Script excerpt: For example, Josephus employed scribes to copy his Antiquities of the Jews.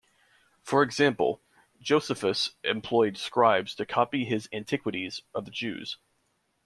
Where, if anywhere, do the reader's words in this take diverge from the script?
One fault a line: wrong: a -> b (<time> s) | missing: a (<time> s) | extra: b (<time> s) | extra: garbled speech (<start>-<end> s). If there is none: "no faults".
no faults